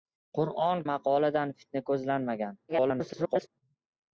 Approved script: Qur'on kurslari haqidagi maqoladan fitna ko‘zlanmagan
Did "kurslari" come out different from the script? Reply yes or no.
yes